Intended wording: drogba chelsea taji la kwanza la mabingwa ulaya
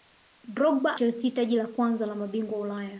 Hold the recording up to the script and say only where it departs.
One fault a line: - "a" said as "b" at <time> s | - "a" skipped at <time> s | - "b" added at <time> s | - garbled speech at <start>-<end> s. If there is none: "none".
none